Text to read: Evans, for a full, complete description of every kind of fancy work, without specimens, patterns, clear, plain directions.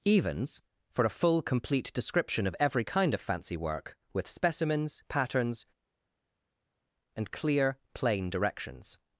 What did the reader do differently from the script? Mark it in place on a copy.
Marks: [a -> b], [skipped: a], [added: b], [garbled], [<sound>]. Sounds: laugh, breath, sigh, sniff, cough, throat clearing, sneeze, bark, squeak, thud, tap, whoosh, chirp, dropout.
Evans, for a full, complete description of every kind of fancy work, [without -> with] specimens, patterns, [added: and] clear, plain directions.